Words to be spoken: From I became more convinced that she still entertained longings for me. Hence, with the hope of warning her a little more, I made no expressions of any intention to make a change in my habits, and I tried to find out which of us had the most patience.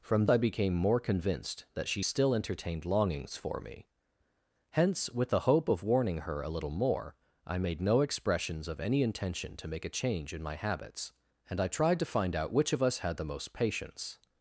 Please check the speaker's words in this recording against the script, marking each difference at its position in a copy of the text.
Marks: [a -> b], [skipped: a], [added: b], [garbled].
From I became more convinced that she still entertained longings for me. Hence, with the hope of warning her a little more, I made no expressions of any intention to make a change in my habits, and I tried to find out which of us had the most patience.